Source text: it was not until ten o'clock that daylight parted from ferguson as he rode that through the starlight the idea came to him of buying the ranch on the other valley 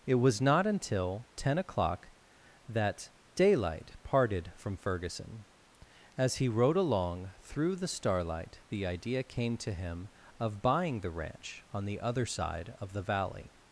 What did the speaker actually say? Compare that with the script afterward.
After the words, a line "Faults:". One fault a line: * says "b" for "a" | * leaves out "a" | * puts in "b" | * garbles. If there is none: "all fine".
it was not until ten o'clock that daylight parted from ferguson as he rode along through the starlight the idea came to him of buying the ranch on the other side of the valley
Faults:
* says "along" for "that"
* puts in "side of the"